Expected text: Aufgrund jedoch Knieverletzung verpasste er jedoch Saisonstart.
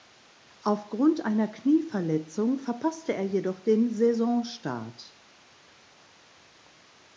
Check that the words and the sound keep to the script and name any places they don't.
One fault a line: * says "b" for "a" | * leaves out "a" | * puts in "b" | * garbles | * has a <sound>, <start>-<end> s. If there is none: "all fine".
* says "einer" for "jedoch"
* puts in "den"